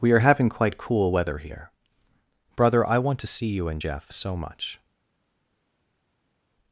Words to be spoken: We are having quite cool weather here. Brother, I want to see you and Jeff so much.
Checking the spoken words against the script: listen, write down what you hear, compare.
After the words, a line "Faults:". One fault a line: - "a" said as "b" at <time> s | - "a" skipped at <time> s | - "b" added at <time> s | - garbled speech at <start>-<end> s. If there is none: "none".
We are having quite cool weather here. Brother, I want to see you and Jeff so much.
Faults:
none